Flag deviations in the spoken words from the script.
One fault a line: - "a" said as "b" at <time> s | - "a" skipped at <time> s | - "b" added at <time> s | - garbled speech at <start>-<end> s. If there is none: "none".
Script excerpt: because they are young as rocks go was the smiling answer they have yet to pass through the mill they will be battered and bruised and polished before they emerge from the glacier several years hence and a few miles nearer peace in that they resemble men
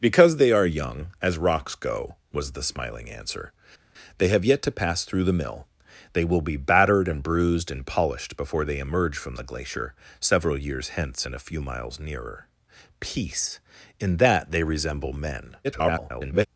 - garbled speech at 15.6-16.5 s